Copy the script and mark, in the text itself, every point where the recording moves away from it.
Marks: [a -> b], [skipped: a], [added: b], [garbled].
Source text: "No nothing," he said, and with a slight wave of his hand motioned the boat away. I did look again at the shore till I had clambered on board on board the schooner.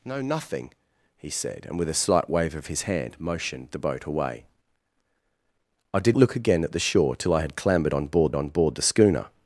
"No nothing," he said, and with a slight wave of his hand motioned the boat away. I did look again at the shore till I had clambered on board on board the schooner.